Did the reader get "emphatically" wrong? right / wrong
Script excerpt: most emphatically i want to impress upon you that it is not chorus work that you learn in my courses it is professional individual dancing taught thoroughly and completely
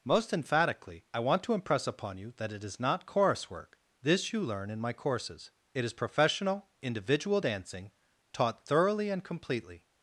right